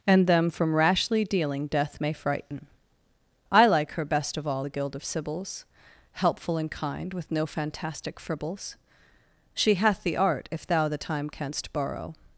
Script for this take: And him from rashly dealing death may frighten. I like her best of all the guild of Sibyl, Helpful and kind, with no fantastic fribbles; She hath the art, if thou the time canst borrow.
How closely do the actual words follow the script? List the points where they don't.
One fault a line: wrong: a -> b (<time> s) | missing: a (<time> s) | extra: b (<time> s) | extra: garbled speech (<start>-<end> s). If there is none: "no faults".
wrong: him -> them (0.2 s)
wrong: Sibyl -> Sibyls (5.0 s)